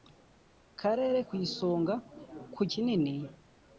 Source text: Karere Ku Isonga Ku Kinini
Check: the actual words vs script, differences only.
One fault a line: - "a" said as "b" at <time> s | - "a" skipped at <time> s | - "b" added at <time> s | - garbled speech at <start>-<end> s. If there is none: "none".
none